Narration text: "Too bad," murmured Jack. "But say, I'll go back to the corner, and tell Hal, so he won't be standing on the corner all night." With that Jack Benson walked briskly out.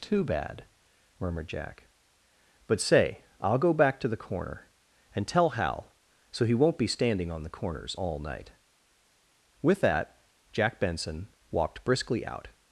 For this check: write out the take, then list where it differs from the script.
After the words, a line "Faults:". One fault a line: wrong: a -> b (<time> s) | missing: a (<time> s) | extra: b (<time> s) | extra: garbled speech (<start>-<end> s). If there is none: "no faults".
"Too bad," murmured Jack. "But say, I'll go back to the corner, and tell Hal, so he won't be standing on the corners all night." With that Jack Benson walked briskly out.
Faults:
wrong: corner -> corners (7.5 s)